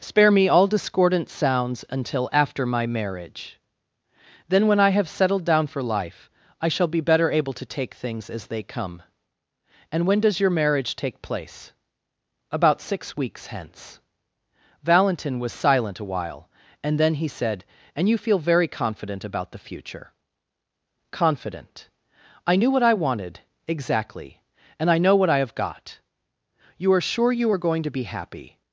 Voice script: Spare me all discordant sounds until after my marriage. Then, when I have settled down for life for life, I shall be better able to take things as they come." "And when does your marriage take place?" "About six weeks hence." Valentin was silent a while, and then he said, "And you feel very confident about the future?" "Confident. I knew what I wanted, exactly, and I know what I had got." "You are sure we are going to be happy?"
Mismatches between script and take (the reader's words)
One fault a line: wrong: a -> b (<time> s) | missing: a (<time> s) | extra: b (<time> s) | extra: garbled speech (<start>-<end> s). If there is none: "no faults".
missing: for life (6.3 s)
wrong: had -> have (25.4 s)
wrong: we -> you (27.3 s)